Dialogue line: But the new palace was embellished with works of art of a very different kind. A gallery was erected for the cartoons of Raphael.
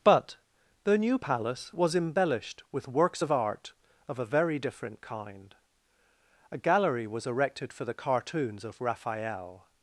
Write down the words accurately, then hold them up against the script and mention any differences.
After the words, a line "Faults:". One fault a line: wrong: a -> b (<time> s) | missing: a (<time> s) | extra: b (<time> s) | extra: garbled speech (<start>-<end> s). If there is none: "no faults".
But the new palace was embellished with works of art of a very different kind. A gallery was erected for the cartoons of Raphael.
Faults:
no faults